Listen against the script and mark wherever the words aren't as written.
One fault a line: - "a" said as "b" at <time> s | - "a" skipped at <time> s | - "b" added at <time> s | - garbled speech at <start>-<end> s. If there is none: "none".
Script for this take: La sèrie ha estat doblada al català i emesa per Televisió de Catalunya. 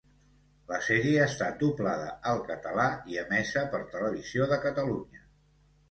none